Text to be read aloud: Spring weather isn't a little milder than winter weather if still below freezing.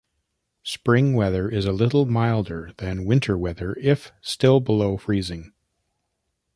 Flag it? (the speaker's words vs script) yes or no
yes